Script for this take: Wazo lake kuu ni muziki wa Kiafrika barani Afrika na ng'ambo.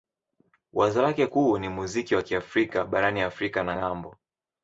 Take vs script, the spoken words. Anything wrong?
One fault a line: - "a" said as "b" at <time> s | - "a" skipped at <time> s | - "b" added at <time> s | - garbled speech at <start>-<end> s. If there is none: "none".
none